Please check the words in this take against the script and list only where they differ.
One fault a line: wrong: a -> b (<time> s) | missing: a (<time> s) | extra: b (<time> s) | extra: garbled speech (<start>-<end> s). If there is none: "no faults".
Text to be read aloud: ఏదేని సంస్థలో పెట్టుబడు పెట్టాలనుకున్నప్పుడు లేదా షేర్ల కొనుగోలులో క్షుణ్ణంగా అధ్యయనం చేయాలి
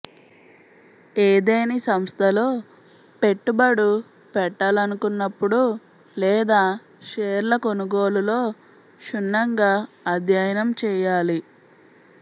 no faults